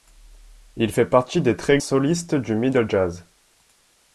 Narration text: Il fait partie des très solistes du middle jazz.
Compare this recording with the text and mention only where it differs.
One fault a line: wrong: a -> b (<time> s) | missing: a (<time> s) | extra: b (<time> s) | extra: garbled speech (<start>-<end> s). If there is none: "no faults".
no faults